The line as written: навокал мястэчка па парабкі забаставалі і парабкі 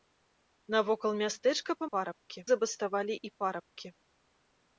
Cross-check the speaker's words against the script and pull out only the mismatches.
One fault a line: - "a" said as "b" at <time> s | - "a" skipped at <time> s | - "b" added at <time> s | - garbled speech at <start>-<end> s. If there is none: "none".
none